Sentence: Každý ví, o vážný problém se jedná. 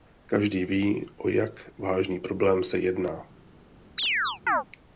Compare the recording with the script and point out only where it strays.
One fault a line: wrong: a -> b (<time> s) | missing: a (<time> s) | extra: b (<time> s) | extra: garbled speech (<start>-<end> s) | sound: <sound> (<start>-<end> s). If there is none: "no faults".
extra: jak (1.3 s)
sound: chirp (4.0-4.6 s)